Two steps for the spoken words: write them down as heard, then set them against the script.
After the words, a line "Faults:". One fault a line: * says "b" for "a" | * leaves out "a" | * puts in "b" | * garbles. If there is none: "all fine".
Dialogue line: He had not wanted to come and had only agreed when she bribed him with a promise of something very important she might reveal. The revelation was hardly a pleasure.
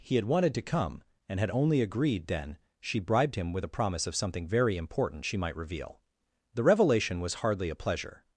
He had wanted to come and had only agreed then she bribed him with a promise of something very important she might reveal. The revelation was hardly a pleasure.
Faults:
* leaves out "not"
* says "then" for "when"